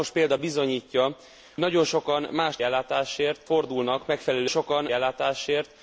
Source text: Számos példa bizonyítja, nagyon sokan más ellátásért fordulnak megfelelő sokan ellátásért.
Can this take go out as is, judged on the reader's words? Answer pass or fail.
pass